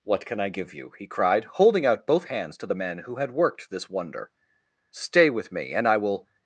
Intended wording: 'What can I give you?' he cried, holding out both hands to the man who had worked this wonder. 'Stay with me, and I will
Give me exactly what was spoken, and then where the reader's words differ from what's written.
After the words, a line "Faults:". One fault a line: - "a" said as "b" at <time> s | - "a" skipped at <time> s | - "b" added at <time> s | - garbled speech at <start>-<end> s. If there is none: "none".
'What can I give you?' he cried, holding out both hands to the man who had worked this wonder. 'Stay with me, and I will
Faults:
none